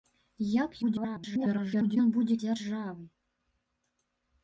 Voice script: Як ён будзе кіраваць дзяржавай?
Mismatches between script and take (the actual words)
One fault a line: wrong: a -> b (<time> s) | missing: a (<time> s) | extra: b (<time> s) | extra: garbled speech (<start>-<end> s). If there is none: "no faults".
extra: garbled speech (0.8-2.0 s)
missing: кіраваць (2.4 s)